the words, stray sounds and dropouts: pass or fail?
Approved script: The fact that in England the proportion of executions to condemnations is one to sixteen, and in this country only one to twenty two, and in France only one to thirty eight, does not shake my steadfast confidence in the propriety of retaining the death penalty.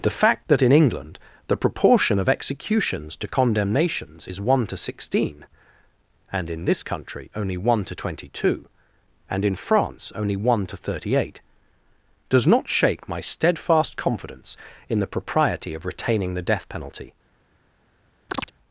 fail